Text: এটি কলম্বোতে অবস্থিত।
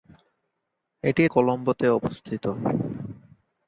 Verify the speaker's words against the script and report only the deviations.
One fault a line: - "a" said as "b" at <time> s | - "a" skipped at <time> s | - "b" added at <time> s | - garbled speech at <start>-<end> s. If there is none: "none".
none